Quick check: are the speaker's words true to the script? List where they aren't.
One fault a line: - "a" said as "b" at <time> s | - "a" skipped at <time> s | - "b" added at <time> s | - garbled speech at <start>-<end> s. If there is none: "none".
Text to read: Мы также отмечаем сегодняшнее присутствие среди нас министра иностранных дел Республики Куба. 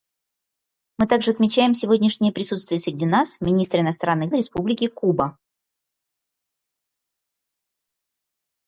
- "дел" skipped at 4.3 s